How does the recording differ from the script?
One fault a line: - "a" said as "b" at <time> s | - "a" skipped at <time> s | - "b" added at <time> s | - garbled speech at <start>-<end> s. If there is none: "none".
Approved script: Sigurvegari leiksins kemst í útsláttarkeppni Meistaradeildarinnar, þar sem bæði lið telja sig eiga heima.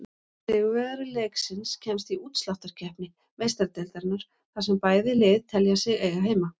none